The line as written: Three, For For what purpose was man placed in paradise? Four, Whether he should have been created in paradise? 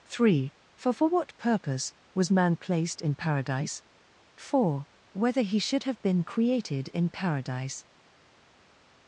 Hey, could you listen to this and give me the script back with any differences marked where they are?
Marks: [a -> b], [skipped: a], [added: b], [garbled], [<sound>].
Three, For For what purpose was man placed in paradise? Four, Whether he should have been created in paradise?